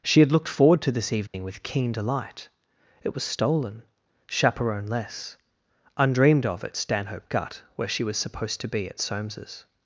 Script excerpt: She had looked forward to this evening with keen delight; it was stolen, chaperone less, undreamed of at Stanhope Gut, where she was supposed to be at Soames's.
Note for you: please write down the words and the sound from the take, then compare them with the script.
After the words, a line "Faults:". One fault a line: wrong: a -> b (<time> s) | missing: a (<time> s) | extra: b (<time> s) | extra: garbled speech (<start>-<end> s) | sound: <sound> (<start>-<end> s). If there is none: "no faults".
She had looked forward to this evening with keen delight; it was stolen, chaperone less, undreamed of at Stanhope Gut, where she was supposed to be at Soames's.
Faults:
sound: dropout (1.3-1.3 s)